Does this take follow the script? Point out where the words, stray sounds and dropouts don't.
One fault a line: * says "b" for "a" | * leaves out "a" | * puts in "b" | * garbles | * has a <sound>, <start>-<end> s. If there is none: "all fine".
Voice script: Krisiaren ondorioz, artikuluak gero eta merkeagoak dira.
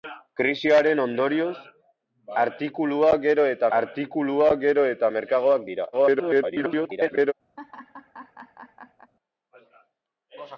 * puts in "artikuluak gero eta"
* garbles
* has a laugh, 7.6-9.1 s